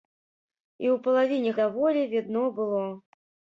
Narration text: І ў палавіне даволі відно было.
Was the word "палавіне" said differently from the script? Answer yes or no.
no